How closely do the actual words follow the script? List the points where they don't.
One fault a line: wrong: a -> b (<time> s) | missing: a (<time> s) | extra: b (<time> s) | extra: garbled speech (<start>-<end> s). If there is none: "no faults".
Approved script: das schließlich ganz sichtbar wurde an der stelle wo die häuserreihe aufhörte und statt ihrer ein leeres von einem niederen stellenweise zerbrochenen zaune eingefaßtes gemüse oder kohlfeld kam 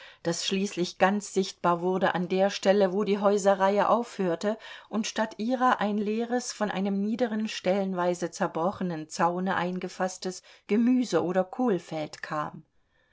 no faults